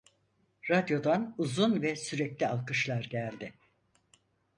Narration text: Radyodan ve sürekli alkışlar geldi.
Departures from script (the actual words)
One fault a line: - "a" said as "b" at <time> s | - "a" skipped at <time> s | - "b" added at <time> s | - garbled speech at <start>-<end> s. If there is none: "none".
- "uzun" added at 1.4 s